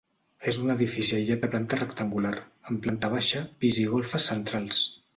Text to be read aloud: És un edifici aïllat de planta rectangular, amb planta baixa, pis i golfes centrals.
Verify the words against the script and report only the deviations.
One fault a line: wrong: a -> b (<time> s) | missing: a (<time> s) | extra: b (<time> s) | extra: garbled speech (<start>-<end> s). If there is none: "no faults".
no faults